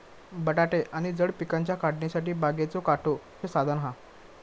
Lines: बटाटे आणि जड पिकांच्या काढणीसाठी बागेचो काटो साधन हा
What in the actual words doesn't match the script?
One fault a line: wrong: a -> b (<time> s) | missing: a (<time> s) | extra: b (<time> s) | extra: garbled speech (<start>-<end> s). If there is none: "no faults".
no faults